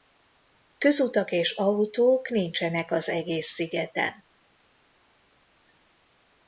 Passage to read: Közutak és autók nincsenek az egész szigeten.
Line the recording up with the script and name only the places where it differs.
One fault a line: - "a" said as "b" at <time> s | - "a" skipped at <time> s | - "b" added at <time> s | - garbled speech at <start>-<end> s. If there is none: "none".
none